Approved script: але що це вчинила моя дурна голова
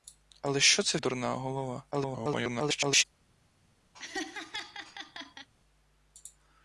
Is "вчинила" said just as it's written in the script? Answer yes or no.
no